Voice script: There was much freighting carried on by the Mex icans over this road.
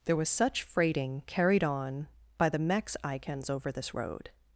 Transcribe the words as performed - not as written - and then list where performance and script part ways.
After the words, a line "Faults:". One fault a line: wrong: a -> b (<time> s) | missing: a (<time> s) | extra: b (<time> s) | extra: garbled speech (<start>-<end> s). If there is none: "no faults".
There was such freighting carried on by the Mex icans over this road.
Faults:
wrong: much -> such (0.3 s)